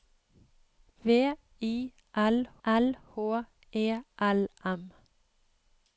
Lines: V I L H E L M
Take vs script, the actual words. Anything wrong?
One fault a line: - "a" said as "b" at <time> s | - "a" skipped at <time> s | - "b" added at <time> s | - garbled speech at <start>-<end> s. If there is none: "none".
- "L" added at 2.7 s